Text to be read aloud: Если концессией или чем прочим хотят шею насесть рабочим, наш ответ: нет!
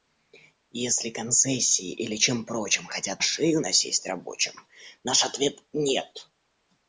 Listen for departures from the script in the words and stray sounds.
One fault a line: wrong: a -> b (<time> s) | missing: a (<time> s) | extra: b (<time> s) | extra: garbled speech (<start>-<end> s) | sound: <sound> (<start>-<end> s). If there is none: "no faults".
no faults